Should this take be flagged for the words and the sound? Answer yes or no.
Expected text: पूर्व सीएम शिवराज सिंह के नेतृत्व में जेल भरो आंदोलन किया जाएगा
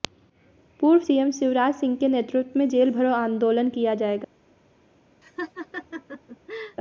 yes